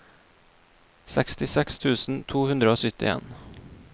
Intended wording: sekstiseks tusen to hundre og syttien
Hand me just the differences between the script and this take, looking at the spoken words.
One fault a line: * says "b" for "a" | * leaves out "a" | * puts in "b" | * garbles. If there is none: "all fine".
all fine